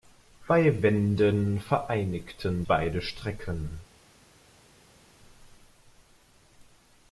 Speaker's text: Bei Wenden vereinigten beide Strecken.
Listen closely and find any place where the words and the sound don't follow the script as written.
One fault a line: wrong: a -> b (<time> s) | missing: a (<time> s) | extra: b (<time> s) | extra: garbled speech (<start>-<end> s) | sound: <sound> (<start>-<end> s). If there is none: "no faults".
no faults